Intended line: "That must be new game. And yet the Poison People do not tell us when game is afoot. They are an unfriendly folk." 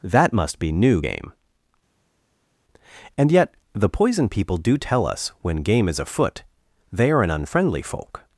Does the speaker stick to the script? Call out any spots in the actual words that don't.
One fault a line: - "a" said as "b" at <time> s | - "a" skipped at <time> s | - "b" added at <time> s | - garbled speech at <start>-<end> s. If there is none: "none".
- "not" skipped at 4.8 s